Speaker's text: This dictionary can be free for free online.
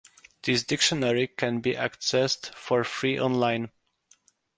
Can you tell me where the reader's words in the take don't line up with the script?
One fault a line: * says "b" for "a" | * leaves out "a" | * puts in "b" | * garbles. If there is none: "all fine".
* says "accessed" for "free"